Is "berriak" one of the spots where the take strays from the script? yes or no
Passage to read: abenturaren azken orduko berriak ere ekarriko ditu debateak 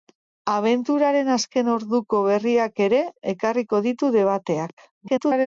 no